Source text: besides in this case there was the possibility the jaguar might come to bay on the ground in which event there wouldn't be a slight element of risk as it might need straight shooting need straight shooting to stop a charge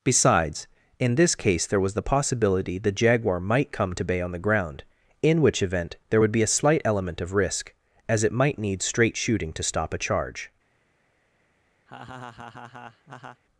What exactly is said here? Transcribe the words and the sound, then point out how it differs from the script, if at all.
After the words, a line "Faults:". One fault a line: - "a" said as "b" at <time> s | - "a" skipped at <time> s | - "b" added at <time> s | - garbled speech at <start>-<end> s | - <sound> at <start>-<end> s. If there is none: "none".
besides in this case there was the possibility the jaguar might come to bay on the ground in which event there would be a slight element of risk as it might need straight shooting to stop a charge
Faults:
- "wouldn't" said as "would" at 6.2 s
- "need straight shooting" skipped at 9.5 s
- laugh at 11.9-13.4 s